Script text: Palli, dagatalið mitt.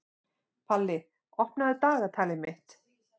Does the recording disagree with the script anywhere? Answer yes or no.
yes